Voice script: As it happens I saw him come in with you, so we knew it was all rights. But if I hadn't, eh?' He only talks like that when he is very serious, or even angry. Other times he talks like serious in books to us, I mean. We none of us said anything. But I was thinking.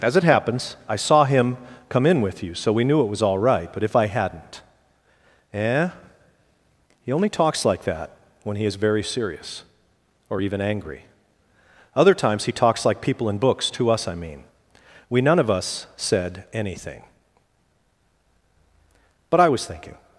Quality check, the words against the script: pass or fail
fail